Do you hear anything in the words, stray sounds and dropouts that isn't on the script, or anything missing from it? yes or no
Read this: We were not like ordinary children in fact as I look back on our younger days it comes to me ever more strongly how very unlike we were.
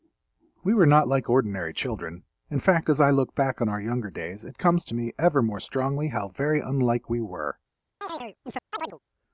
yes